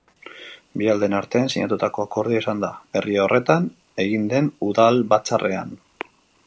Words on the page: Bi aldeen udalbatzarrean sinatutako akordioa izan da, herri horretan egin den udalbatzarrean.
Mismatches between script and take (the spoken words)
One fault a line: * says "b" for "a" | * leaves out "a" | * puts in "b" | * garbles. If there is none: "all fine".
* says "artean" for "udalbatzarrean"